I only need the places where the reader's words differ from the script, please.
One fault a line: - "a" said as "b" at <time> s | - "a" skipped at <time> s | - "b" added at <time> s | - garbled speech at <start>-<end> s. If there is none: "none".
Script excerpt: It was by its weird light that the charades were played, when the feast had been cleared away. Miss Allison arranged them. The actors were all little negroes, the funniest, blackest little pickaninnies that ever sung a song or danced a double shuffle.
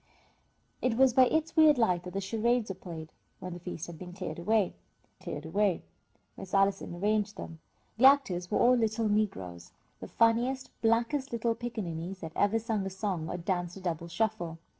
- "cleared away" added at 5.2 s